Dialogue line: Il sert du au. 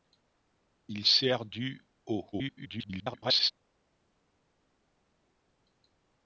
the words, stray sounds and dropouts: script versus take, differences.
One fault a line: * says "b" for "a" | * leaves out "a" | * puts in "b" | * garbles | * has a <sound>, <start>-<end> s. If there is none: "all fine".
* garbles